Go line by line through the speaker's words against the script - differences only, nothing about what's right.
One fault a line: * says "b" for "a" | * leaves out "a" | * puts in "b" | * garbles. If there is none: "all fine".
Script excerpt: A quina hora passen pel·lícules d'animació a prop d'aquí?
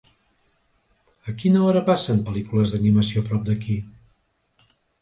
all fine